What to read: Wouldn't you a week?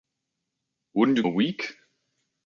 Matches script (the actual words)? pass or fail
pass